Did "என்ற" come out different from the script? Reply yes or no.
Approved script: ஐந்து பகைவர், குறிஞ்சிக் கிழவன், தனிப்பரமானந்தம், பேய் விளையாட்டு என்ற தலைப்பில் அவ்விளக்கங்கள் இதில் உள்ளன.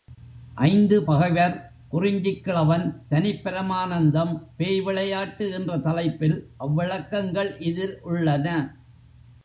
no